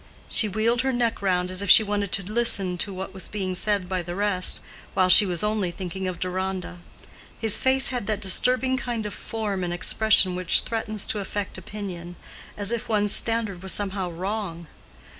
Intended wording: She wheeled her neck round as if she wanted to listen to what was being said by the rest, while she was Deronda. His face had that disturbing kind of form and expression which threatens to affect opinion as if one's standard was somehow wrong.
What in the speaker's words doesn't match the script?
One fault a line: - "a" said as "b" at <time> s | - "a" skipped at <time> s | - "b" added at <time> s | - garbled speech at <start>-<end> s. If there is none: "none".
- "only thinking of" added at 5.4 s